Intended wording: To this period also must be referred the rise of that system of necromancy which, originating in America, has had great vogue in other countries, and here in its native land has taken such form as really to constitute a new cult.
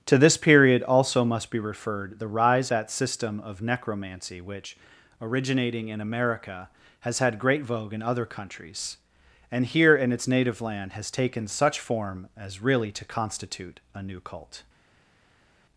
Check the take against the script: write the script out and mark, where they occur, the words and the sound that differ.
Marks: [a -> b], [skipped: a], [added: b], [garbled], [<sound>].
To this period also must be referred the rise [skipped: of] that system of necromancy which, originating in America, has had great vogue in other countries, and here in its native land has taken such form as really to constitute a new cult.